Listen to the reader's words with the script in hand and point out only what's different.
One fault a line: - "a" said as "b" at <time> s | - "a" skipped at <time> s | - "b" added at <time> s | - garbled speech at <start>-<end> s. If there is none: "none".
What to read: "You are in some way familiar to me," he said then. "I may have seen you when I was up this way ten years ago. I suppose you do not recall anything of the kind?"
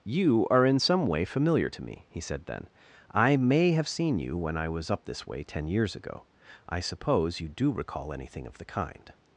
- "not" skipped at 7.7 s